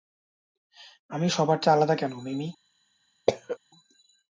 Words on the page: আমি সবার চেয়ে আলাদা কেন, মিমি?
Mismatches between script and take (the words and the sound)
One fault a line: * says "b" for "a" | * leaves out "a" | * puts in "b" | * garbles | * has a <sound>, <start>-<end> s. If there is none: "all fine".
* has a cough, 3.3-3.6 s